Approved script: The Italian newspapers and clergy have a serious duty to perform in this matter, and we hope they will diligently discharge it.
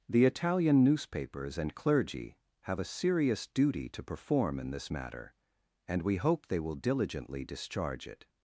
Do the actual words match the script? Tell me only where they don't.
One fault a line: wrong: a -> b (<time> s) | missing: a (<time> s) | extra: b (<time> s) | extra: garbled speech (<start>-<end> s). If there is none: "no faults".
no faults